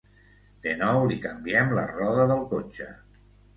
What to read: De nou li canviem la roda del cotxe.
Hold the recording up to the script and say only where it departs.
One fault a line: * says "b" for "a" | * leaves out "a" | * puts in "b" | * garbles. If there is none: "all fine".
all fine